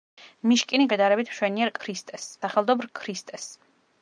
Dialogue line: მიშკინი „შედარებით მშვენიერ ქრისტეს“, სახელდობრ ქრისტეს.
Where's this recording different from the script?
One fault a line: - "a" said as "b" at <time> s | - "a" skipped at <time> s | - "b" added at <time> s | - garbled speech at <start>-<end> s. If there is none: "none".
none